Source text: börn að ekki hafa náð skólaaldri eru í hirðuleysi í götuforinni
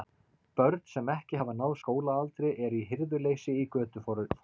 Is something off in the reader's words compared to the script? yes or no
yes